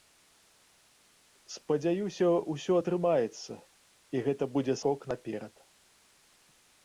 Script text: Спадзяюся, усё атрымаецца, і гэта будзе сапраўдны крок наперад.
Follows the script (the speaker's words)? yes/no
no